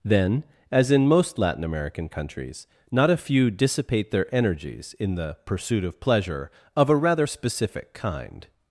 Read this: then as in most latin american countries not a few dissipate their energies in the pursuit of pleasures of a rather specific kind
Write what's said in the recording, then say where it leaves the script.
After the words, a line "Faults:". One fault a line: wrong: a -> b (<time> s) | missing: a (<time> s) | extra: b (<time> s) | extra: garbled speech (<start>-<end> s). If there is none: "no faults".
then as in most latin american countries not a few dissipate their energies in the pursuit of pleasure of a rather specific kind
Faults:
wrong: pleasures -> pleasure (6.0 s)